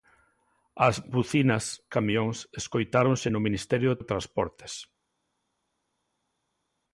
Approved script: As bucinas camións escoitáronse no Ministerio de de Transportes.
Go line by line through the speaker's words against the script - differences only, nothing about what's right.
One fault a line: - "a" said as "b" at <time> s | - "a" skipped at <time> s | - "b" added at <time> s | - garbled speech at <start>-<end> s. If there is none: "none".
none